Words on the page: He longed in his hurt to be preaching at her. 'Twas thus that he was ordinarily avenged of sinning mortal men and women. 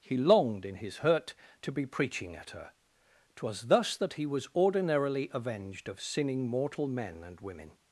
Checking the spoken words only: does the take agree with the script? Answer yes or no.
yes